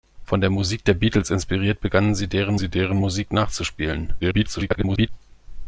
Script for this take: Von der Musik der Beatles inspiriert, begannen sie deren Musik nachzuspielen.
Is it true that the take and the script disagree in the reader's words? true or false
true